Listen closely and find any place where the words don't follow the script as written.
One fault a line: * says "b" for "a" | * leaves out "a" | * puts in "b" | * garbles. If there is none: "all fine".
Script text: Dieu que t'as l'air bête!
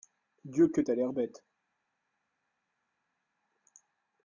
all fine